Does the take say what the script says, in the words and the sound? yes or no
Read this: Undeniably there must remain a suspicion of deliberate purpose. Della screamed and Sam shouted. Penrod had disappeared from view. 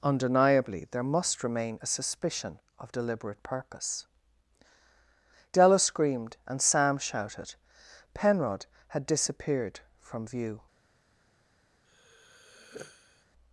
no